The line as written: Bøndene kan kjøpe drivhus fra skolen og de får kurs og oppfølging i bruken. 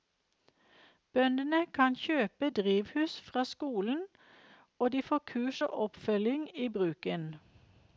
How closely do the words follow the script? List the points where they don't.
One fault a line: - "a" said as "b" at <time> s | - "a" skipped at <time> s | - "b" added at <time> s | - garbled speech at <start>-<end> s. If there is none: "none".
none